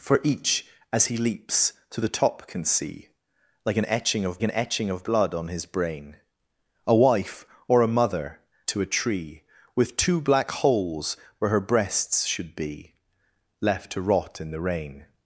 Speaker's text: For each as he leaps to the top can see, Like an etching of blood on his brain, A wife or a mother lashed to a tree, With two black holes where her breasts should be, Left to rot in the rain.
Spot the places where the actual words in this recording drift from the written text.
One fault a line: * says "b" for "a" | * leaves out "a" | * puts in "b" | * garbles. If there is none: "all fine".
* puts in "an etching of"
* leaves out "lashed"